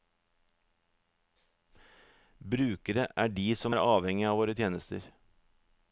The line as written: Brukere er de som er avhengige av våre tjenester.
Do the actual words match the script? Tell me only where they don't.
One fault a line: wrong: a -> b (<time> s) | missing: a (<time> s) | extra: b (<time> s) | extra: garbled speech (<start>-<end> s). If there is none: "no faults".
no faults